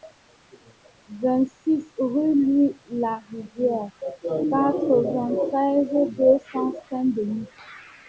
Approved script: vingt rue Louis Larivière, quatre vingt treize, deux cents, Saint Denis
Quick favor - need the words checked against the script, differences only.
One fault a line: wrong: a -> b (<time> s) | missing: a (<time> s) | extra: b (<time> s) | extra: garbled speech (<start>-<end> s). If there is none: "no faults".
extra: six (1.6 s)